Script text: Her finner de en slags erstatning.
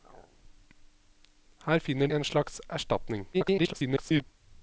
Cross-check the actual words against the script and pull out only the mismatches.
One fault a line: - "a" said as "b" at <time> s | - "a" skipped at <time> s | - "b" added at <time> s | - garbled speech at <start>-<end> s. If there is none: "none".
- "de" skipped at 2.1 s
- garbled speech at 3.3-4.2 s